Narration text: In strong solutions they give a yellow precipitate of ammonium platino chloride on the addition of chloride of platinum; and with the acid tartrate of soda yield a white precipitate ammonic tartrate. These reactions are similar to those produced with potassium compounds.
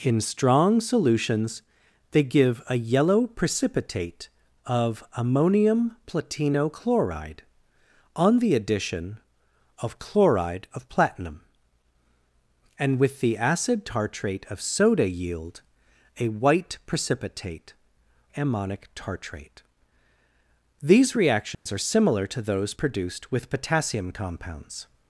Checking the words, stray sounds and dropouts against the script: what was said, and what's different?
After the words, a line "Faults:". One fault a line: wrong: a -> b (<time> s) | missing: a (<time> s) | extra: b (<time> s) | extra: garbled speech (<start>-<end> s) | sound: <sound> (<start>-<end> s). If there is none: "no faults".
In strong solutions they give a yellow precipitate of ammonium platino chloride on the addition of chloride of platinum; and with the acid tartrate of soda yield a white precipitate ammonic tartrate. These reactions are similar to those produced with potassium compounds.
Faults:
sound: dropout (21.5-21.7 s)